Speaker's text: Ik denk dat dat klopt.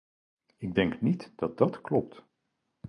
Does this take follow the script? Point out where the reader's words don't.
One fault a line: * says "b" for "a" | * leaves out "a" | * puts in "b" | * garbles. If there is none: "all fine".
* puts in "niet"